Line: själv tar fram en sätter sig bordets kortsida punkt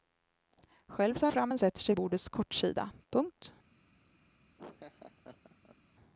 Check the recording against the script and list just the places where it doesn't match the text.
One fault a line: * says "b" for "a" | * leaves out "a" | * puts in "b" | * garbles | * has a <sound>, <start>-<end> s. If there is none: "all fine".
* has a laugh, 4.6-5.8 s